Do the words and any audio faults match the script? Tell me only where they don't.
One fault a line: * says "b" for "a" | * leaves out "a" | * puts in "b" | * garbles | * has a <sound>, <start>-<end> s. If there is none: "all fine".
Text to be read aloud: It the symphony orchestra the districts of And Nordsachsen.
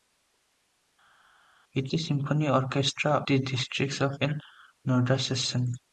all fine